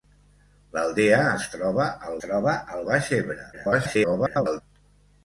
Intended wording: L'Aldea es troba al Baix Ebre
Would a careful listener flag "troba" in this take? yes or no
no